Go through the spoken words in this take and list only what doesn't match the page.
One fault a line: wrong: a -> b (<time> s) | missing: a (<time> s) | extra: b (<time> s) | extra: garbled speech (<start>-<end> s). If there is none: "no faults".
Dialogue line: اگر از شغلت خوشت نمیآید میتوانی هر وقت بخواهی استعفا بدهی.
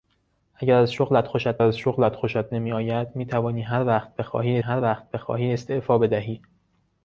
extra: از شغلت خوشت (1.6 s)
extra: هر وقت بخواهی (4.6 s)